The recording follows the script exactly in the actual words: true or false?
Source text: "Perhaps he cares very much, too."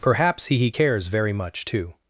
false